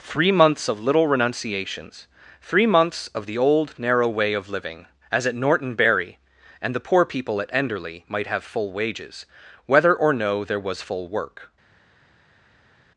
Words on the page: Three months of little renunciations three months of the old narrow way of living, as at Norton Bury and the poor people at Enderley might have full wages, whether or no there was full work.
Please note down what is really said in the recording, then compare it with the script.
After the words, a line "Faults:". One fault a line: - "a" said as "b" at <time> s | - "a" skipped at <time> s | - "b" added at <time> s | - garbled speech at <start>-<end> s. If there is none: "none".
Three months of little renunciations three months of the old narrow way of living, as at Norton Bury and the poor people at Enderley might have full wages, whether or no there was full work.
Faults:
none